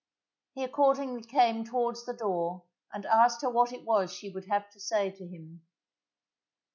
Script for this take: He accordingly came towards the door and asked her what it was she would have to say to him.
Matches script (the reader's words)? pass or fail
pass